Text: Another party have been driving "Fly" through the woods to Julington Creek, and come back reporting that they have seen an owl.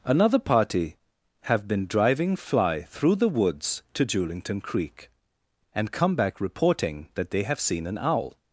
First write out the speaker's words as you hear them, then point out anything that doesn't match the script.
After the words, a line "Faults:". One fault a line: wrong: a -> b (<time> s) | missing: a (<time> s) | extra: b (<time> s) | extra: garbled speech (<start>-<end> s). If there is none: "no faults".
Another party have been driving "Fly" through the woods to Julington Creek, and come back reporting that they have seen an owl.
Faults:
no faults